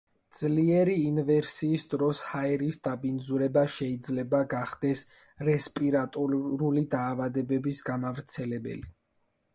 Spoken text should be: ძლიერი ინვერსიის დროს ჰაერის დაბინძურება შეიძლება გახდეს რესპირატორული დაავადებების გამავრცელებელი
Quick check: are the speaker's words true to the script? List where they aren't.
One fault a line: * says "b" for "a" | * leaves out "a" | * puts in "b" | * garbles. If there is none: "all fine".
all fine